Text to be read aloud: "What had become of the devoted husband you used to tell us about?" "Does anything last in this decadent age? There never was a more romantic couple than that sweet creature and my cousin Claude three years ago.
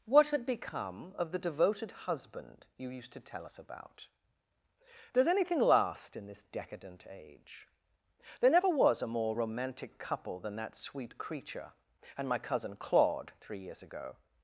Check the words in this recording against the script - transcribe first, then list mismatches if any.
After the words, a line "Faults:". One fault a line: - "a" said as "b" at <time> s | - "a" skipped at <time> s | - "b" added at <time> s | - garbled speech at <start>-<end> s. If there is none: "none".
"What had become of the devoted husband you used to tell us about?" "Does anything last in this decadent age? There never was a more romantic couple than that sweet creature and my cousin Claude three years ago.
Faults:
none